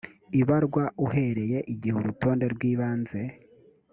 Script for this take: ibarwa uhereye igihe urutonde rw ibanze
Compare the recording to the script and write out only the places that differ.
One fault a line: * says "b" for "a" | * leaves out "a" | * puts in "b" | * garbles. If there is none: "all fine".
all fine